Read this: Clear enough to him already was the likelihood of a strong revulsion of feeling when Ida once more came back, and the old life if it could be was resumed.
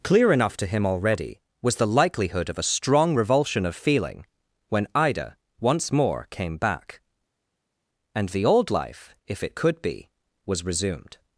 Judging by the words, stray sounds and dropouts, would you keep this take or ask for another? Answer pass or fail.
pass